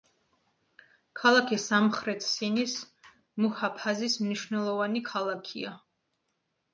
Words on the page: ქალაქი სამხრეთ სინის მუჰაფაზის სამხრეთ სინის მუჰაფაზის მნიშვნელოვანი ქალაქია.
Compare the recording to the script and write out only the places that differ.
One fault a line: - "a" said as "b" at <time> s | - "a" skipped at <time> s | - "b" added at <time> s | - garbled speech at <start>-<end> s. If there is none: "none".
- "სამხრეთ სინის მუჰაფაზის" skipped at 4.2 s